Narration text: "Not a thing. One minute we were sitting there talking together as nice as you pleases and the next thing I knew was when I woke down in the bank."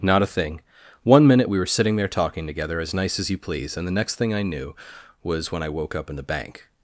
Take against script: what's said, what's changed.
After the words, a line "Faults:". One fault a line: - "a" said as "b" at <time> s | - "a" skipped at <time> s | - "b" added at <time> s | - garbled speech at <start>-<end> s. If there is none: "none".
"Not a thing. One minute we were sitting there talking together as nice as you please and the next thing I knew was when I woke up in the bank."
Faults:
- "pleases" said as "please" at 3.4 s
- "down" said as "up" at 6.0 s